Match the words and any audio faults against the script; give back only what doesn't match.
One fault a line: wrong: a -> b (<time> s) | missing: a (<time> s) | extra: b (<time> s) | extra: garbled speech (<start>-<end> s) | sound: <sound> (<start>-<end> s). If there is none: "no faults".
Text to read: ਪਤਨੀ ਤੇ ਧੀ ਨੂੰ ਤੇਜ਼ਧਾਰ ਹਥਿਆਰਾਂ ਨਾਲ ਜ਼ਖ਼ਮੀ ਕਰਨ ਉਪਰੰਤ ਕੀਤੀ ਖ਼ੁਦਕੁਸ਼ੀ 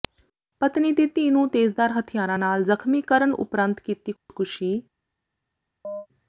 sound: dropout (4.2-4.3 s)
sound: chirp (5.8-6.1 s)